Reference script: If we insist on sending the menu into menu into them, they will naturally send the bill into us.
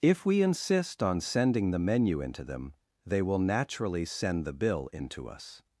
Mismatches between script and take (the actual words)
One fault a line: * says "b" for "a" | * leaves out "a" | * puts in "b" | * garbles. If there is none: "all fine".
* leaves out "menu into"